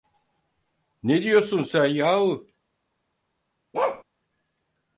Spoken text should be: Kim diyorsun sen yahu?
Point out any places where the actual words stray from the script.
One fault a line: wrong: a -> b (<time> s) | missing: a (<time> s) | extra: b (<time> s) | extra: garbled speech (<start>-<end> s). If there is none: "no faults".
wrong: Kim -> Ne (1.0 s)